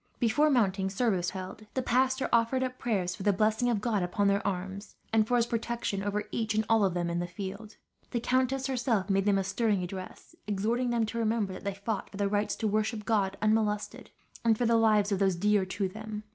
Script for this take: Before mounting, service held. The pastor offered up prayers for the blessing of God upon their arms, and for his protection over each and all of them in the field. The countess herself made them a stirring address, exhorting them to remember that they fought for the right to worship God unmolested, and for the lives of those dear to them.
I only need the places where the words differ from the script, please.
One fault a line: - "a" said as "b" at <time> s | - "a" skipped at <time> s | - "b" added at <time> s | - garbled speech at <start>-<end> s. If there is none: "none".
none